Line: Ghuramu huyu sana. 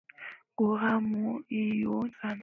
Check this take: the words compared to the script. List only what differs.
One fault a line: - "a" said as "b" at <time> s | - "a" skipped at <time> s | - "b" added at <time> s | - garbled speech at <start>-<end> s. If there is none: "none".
none